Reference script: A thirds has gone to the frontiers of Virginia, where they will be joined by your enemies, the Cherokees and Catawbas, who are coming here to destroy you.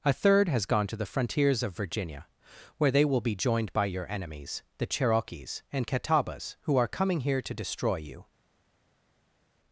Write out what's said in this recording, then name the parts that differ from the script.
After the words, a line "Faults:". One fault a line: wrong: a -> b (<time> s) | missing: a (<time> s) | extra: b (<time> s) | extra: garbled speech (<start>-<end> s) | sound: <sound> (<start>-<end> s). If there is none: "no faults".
A third has gone to the frontiers of Virginia, where they will be joined by your enemies, the Cherokees and Catawbas, who are coming here to destroy you.
Faults:
wrong: thirds -> third (0.1 s)